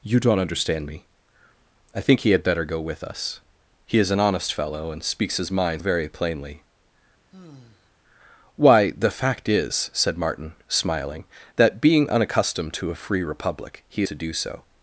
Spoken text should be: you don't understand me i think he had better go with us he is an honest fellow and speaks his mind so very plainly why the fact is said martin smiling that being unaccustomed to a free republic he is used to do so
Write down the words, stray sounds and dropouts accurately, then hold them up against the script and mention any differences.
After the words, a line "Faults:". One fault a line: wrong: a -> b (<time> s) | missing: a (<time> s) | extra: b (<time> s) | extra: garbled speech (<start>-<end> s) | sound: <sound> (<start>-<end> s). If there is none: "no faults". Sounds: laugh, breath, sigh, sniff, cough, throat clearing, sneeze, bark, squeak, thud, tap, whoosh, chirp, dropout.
you don't understand me i think he had better go with us he is an honest fellow and speaks his mind very plainly why the fact is said martin smiling that being unaccustomed to a free republic he to do so
Faults:
missing: so (5.8 s)
sound: sigh (7.3-7.9 s)
missing: is used (14.0 s)